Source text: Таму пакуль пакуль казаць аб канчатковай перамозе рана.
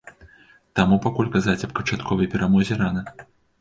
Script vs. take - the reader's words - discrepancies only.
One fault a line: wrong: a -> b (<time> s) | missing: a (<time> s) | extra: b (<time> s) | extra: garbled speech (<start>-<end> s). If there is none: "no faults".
missing: пакуль (1.3 s)